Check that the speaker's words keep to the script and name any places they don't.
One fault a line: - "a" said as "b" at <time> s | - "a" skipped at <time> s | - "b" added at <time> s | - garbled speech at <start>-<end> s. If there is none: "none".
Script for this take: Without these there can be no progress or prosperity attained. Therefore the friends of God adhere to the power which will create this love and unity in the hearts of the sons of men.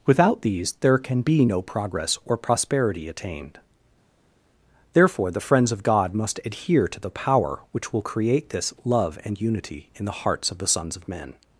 - "must" added at 6.1 s